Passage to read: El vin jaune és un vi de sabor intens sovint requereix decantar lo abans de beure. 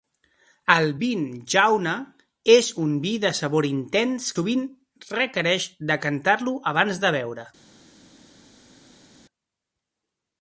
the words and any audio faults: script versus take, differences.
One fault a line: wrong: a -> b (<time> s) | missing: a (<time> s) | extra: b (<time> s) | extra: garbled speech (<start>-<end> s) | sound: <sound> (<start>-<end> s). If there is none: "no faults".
no faults